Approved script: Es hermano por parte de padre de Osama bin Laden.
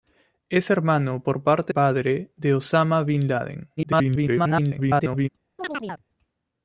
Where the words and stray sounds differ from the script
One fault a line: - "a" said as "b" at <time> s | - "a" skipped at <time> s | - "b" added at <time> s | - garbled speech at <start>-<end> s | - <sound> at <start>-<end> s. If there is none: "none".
- "de" skipped at 1.7 s
- garbled speech at 3.8-5.3 s
- chirp at 5.6-6.0 s